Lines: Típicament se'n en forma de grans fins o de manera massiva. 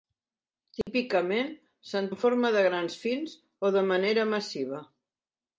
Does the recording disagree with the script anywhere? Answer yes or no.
no